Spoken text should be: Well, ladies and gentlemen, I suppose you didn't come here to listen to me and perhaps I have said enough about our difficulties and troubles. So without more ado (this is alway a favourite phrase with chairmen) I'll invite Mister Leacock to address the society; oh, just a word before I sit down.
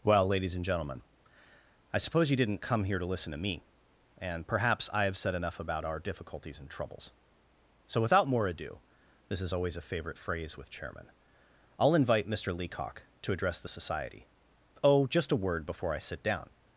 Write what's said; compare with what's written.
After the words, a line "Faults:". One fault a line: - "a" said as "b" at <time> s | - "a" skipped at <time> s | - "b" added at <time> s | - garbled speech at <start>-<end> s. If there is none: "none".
Well, ladies and gentlemen, I suppose you didn't come here to listen to me and perhaps I have said enough about our difficulties and troubles. So without more ado (this is always a favourite phrase with chairmen) I'll invite Mister Leacock to address the society; oh, just a word before I sit down.
Faults:
- "alway" said as "always" at 9.5 s